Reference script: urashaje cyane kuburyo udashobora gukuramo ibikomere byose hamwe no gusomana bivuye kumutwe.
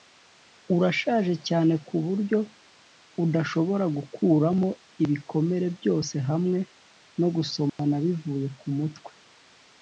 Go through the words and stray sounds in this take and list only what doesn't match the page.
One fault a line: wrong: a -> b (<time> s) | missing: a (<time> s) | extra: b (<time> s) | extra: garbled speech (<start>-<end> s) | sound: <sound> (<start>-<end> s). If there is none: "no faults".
sound: dropout (7.7-7.8 s)